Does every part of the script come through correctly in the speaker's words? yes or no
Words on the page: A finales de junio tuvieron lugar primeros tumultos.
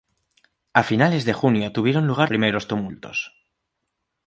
yes